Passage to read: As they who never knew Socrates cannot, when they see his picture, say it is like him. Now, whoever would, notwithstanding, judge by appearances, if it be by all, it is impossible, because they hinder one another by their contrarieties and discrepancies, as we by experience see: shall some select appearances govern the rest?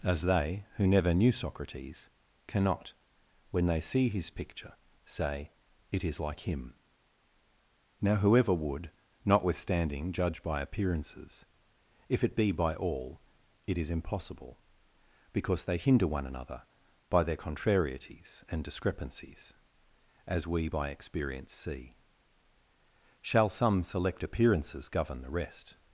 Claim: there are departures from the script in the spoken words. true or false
false